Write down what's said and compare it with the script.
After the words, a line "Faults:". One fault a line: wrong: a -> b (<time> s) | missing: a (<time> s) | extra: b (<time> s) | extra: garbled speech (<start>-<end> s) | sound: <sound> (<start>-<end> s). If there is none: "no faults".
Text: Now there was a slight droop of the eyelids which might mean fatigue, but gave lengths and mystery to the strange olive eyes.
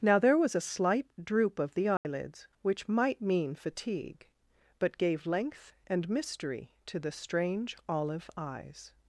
Now there was a slight droop of the eyelids which might mean fatigue, but gave length and mystery to the strange olive eyes.
Faults:
sound: dropout (2.0-2.0 s)
wrong: lengths -> length (5.3 s)